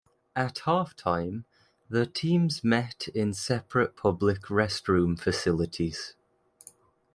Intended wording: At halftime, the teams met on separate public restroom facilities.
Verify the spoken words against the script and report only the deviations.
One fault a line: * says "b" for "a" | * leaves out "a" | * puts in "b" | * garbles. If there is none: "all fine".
* says "in" for "on"